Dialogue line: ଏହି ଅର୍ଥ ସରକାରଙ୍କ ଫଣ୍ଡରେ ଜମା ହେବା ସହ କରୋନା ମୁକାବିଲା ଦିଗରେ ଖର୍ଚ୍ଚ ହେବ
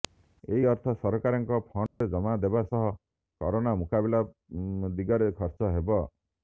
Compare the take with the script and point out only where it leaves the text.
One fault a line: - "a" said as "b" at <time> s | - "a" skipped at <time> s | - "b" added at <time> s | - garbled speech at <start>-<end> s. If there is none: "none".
none